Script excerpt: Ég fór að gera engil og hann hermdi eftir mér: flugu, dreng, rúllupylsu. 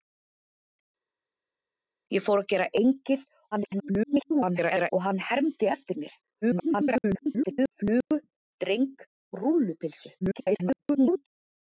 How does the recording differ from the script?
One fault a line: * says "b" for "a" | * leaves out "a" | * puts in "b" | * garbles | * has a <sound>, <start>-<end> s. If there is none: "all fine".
* garbles
* garbles
* garbles